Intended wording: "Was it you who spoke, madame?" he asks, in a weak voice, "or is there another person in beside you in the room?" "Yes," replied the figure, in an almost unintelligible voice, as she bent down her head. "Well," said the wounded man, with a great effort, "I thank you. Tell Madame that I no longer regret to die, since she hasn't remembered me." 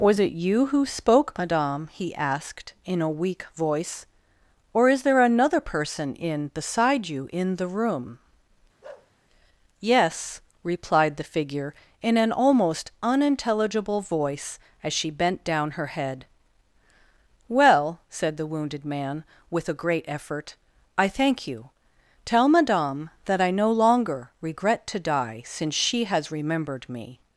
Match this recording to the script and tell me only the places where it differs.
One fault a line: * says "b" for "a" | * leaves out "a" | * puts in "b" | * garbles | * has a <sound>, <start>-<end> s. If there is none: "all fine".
* says "asked" for "asks"
* has a bark, 8.8-9.1 s
* says "has" for "hasn't"